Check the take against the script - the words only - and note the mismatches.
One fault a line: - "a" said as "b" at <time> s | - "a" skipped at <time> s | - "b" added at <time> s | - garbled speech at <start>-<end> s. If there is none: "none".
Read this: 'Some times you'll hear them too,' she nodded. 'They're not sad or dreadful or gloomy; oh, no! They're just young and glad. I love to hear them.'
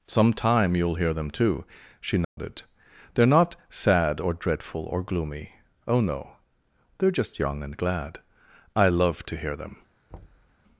- "times" said as "time" at 0.3 s